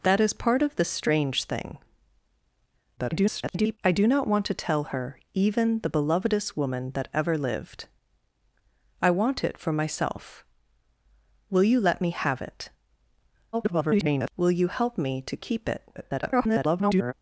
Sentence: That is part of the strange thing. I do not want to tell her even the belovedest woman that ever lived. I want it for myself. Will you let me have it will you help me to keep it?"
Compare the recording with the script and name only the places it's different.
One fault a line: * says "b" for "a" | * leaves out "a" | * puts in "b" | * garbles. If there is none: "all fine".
* garbles
* garbles
* garbles